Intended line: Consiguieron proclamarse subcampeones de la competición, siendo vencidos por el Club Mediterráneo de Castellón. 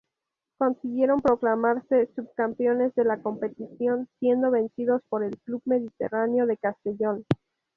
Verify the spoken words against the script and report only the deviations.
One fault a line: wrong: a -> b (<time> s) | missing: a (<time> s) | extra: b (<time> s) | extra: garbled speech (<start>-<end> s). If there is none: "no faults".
no faults